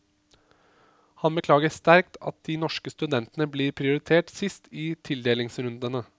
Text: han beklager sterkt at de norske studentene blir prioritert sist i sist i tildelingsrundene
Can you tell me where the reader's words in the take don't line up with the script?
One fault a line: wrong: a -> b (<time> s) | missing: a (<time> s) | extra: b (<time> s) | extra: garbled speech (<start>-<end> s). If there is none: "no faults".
missing: sist i (4.9 s)